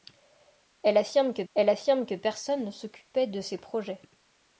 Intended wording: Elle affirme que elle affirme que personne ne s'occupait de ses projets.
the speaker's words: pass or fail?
pass